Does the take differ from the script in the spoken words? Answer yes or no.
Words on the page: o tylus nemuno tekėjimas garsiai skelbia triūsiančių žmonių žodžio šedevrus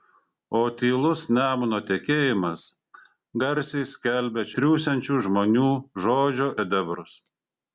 no